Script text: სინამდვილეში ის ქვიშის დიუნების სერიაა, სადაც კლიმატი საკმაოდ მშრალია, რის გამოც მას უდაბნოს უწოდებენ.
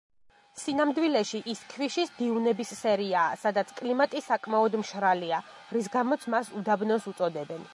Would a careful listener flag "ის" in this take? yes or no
no